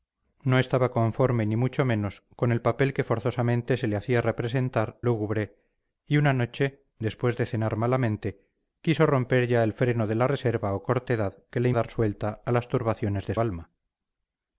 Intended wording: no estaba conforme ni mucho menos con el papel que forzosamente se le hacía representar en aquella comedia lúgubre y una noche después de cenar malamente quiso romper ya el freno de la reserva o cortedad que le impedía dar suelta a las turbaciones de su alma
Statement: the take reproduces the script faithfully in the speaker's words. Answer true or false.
false